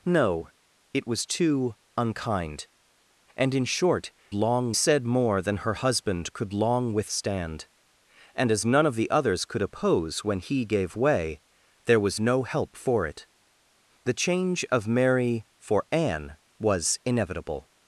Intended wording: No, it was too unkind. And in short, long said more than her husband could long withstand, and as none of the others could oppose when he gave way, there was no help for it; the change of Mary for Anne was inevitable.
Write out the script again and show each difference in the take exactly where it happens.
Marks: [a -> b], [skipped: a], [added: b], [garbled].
No, it was too unkind. And in short, long said more than her husband could long withstand, and as none of the others could oppose when he gave way, there was no help for it; the change of Mary for Anne was inevitable.